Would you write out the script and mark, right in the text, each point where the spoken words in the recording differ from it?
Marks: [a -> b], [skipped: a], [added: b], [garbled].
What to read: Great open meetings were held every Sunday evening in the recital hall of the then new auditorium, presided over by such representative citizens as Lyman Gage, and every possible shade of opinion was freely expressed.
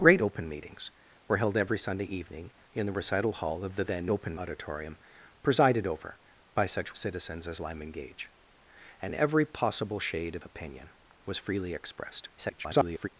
Great open meetings were held every Sunday evening in the recital hall of the then [new -> open] auditorium, presided over by such [skipped: representative] citizens as Lyman Gage, and every possible shade of opinion was freely expressed. [garbled]